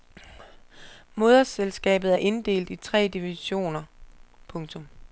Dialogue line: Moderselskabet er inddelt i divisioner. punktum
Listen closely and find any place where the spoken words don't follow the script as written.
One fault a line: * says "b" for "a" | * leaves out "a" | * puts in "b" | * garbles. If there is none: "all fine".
* puts in "tre"